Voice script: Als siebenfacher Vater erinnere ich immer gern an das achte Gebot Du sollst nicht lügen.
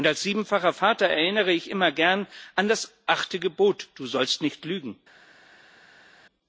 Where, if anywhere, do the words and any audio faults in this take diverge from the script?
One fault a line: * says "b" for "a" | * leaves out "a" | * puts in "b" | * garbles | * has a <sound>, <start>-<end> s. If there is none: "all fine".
all fine